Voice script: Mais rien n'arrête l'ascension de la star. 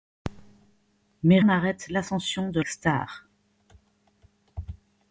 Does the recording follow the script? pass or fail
fail